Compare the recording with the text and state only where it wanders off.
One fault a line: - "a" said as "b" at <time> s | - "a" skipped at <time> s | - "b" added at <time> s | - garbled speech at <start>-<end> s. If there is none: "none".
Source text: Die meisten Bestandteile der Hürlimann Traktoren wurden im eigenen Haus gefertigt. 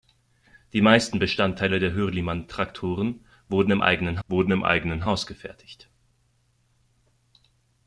- "wurden im eigenen" added at 4.3 s